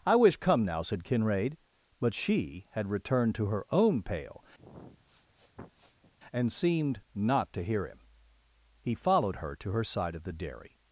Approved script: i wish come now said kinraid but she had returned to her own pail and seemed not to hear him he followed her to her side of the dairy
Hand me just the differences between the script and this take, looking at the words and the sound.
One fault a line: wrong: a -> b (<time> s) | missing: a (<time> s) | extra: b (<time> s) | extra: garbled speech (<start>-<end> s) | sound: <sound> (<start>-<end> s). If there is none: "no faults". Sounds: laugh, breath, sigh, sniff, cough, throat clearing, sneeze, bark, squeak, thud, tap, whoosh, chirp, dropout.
sound: sniff (4.6-6.1 s)